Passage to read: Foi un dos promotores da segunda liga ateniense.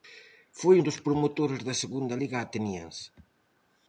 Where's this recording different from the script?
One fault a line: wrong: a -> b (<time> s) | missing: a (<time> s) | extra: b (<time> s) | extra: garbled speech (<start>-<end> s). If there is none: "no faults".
no faults